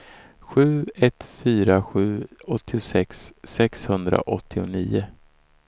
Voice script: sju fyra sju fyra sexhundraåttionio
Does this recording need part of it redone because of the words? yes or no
yes